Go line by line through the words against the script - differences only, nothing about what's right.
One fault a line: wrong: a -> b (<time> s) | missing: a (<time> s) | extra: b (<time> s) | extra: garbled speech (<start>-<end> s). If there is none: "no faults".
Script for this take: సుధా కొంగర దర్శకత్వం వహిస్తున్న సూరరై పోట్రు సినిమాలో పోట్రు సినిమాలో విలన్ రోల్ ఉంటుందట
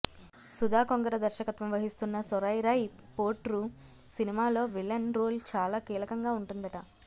wrong: పోట్రు సినిమాలో విలన్ రోల్ -> విలన్ రోల్ చాలా కీలకంగా (4.7 s)